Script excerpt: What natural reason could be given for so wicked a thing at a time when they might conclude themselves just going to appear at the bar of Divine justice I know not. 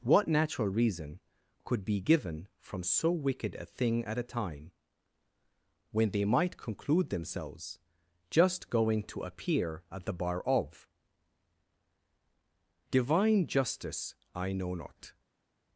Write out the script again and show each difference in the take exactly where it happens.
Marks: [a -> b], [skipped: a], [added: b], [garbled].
What natural reason could be given [for -> from] so wicked a thing at a time when they might conclude themselves just going to appear at the bar of Divine justice I know not.